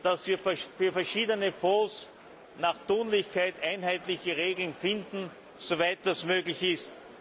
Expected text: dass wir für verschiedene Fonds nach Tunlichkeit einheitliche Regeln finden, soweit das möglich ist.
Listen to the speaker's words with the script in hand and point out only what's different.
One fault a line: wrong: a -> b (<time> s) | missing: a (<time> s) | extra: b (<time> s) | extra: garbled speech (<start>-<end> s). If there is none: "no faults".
no faults